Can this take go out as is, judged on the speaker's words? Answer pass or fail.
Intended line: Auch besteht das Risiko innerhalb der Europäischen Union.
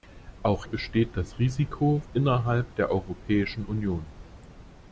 pass